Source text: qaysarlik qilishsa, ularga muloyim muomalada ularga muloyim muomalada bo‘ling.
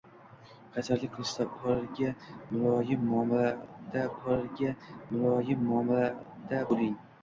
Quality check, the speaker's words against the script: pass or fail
pass